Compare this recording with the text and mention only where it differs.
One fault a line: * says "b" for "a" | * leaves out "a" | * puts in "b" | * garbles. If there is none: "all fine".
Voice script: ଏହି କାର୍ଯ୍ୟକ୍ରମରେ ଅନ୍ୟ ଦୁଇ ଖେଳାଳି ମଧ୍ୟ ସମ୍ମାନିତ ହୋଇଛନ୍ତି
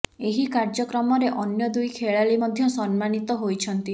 all fine